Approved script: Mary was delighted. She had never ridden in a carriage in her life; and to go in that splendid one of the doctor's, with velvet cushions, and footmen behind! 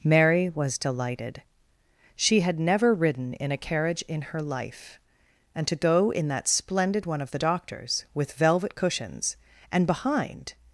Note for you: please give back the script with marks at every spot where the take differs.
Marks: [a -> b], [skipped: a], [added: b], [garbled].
Mary was delighted. She had never ridden in a carriage in her life; and to go in that splendid one of the doctor's, with velvet cushions, and [skipped: footmen] behind!